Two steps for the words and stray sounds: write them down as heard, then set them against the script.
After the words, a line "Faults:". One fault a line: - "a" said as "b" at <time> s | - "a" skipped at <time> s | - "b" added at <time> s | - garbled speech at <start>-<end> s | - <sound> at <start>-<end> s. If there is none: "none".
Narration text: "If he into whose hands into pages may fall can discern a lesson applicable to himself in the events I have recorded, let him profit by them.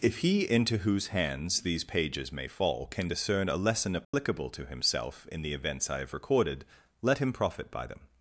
"If he into whose hands these pages may fall can discern a lesson applicable to himself in the events I have recorded, let him profit by them.
Faults:
- "into" said as "these" at 1.6 s
- dropout at 4.0-4.1 s